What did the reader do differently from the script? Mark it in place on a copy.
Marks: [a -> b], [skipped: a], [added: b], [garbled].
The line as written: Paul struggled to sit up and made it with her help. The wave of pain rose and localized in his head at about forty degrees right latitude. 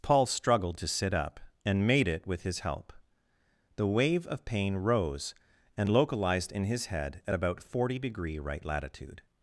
Paul struggled to sit up and made it with [her -> his] help. The wave of pain rose and localized in his head at about forty [degrees -> degree] right latitude.